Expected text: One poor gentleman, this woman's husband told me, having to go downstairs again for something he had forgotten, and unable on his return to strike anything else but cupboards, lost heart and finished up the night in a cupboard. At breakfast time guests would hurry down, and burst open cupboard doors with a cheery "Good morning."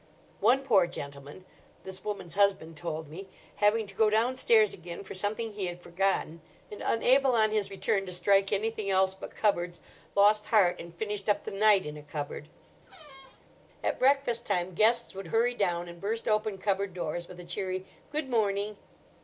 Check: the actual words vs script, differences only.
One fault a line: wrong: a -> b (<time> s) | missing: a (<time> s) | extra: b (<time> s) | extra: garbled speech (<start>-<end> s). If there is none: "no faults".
no faults